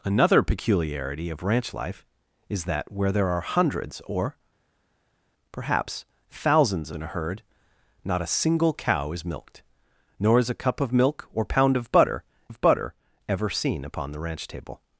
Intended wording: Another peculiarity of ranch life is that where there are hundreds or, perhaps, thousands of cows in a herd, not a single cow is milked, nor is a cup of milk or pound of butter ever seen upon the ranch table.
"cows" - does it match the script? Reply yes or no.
no